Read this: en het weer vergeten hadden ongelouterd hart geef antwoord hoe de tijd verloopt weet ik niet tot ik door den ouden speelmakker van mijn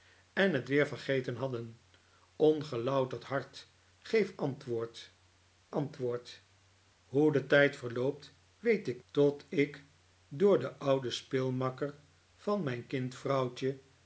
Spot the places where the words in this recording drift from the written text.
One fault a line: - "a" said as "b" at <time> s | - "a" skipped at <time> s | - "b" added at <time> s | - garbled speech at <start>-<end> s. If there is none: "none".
- "antwoord" added at 5.7 s
- "niet" skipped at 9.0 s